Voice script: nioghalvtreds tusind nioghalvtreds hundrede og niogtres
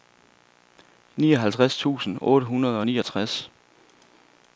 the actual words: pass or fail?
fail